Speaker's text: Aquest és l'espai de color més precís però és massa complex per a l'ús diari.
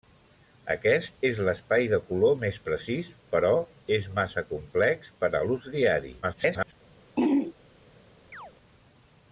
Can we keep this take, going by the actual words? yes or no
no